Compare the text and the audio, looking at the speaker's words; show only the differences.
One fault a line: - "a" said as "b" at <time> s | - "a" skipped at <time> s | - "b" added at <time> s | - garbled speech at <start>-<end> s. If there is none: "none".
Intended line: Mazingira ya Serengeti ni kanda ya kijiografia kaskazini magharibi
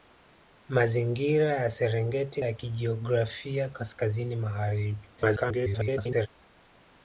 - "ni kanda" skipped at 2.4 s
- garbled speech at 5.2-6.3 s